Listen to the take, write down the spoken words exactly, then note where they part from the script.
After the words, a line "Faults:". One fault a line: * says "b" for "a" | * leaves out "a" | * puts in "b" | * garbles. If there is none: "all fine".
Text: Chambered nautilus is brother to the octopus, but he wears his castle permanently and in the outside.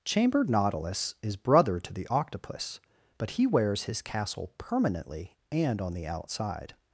Chambered nautilus is brother to the octopus, but he wears his castle permanently and on the outside.
Faults:
* says "on" for "in"